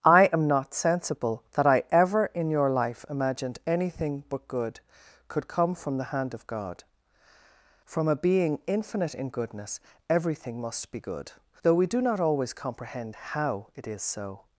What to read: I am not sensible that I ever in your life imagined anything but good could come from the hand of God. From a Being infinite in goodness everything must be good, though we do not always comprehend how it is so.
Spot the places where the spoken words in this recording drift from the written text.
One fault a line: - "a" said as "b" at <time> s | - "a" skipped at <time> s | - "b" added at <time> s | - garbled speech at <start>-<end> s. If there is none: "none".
none